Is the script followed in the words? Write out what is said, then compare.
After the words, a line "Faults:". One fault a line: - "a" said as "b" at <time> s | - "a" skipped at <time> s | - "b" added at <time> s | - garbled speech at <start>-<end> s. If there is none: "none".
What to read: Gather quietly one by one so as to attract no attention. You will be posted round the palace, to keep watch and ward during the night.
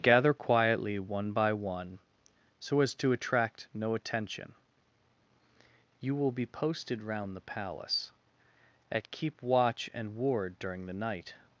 Gather quietly one by one so as to attract no attention. You will be posted round the palace, at keep watch and ward during the night.
Faults:
- "to" said as "at" at 8.9 s